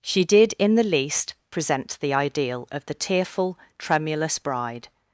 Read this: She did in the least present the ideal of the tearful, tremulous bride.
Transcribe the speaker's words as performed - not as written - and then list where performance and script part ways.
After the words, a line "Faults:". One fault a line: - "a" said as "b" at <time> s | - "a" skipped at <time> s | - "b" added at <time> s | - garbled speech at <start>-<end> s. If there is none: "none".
She did in the least present the ideal of the tearful, tremulous bride.
Faults:
none